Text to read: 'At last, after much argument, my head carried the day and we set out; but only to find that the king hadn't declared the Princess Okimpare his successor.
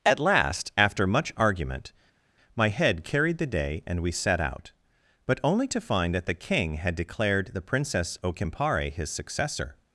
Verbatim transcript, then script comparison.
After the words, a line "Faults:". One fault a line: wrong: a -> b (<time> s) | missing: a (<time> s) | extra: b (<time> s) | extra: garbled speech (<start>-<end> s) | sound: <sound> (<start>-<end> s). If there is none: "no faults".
'At last, after much argument, my head carried the day and we set out; but only to find that the king had declared the Princess Okimpare his successor.
Faults:
wrong: hadn't -> had (6.7 s)